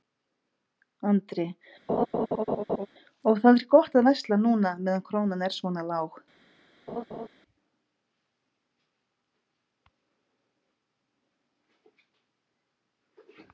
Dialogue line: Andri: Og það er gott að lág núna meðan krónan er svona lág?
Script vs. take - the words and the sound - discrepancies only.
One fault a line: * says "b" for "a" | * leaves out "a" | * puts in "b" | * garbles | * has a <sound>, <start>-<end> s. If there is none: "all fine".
* has a laugh, 1.9-2.9 s
* says "versla" for "lág"
* has a laugh, 6.9-7.3 s